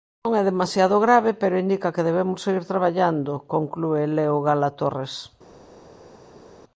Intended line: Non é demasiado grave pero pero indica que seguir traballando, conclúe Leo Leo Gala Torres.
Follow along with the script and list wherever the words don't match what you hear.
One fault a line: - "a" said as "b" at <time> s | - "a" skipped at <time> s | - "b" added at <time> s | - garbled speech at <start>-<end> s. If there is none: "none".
- "pero" skipped at 1.6 s
- "debemos" added at 2.1 s
- "Leo" skipped at 4.4 s